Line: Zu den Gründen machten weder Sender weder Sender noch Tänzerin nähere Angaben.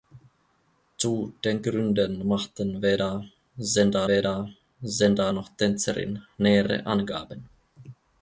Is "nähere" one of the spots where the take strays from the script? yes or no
no